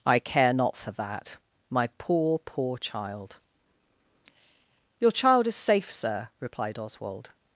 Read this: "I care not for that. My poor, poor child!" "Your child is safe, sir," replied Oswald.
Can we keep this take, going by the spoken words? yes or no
yes